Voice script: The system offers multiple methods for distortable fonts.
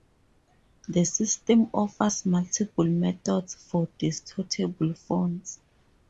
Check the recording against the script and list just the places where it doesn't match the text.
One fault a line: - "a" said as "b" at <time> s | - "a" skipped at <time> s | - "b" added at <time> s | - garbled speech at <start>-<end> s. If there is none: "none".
none